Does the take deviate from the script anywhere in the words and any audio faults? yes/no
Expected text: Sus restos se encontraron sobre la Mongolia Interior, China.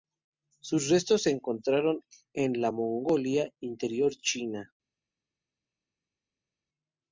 yes